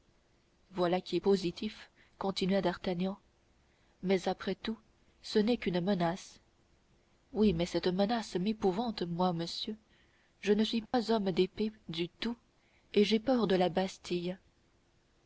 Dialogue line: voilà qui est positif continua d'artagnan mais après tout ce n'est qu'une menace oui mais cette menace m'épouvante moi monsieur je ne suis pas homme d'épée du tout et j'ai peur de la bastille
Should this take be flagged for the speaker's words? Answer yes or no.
no